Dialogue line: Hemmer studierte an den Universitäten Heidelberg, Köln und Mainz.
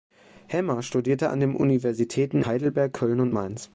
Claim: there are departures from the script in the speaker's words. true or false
false